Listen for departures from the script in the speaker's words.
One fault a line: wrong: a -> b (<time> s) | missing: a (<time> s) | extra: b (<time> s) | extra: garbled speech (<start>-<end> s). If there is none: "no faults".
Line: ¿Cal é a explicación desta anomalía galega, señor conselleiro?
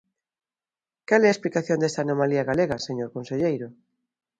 no faults